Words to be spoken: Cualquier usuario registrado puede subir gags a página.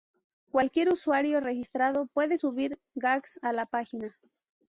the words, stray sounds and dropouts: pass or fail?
fail